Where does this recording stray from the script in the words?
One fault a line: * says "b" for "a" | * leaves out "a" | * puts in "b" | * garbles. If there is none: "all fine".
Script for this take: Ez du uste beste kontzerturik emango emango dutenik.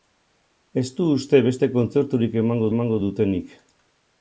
all fine